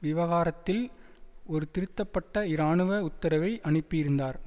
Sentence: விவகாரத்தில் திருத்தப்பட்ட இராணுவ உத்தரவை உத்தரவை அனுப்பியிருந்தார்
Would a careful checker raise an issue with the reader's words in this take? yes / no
yes